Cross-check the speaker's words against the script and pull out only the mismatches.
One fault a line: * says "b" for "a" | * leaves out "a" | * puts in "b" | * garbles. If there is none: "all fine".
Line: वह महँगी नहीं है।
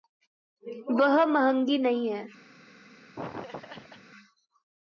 all fine